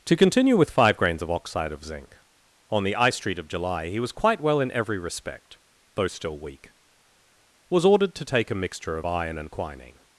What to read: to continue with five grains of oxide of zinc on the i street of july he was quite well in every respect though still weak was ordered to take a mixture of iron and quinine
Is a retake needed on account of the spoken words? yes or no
no